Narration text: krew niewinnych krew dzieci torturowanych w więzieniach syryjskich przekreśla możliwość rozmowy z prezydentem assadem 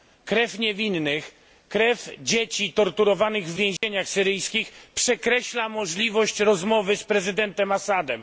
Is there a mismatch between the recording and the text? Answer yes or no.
no